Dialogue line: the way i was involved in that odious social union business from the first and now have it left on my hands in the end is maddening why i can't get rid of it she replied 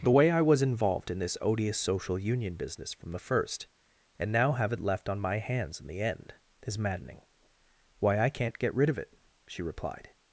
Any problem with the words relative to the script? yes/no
yes